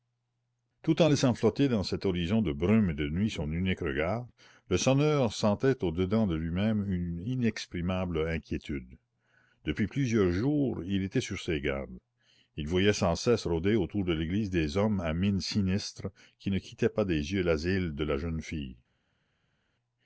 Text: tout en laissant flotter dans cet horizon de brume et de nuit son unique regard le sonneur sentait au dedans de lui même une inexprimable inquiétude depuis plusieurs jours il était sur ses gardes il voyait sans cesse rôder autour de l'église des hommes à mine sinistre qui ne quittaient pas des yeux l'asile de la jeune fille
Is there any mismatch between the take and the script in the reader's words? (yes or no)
no